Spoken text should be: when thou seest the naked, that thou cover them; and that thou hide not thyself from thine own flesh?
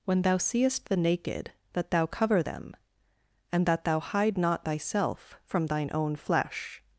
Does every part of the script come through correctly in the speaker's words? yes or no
yes